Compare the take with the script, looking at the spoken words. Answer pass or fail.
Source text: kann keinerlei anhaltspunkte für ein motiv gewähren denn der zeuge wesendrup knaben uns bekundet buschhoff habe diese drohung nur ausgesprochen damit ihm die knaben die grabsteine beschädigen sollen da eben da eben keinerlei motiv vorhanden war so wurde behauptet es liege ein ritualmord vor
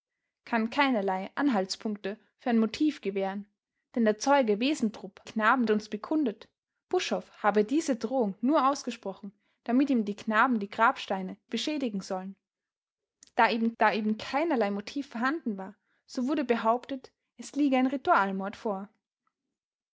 pass